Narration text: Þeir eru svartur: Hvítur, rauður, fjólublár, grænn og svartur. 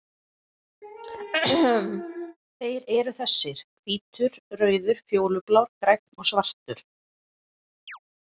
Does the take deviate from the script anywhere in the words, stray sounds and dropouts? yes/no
yes